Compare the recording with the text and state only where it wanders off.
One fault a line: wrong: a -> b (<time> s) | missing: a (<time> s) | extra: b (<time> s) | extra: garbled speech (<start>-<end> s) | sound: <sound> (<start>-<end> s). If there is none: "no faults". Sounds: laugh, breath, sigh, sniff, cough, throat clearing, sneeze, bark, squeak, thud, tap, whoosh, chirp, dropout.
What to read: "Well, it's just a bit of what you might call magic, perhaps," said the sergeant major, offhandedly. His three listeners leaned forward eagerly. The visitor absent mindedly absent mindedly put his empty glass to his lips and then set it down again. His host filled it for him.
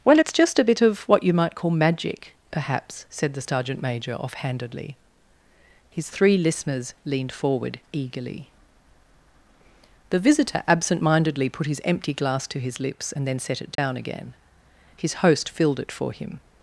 missing: absent mindedly (11.5 s)
sound: dropout (13.8-13.8 s)